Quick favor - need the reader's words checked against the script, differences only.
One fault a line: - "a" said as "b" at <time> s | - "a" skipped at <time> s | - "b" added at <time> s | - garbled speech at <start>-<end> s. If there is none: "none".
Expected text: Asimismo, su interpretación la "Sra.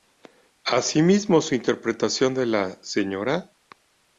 - "de" added at 2.3 s